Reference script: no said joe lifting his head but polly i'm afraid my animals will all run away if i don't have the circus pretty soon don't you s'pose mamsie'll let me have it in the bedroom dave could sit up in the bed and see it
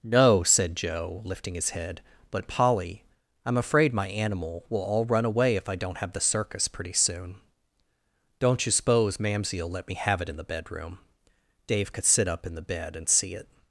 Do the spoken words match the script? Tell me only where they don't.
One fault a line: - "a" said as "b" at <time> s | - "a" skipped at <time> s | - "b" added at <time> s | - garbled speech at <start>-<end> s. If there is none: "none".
- "animals" said as "animal" at 4.1 s